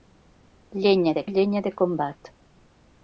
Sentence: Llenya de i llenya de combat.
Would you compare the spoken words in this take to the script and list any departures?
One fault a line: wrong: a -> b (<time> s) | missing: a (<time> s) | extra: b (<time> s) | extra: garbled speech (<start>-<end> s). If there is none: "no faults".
no faults